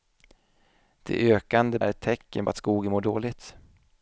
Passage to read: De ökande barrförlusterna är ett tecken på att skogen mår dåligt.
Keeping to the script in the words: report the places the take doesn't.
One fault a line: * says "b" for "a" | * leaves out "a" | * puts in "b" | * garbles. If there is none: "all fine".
* leaves out "barrförlusterna"
* leaves out "på"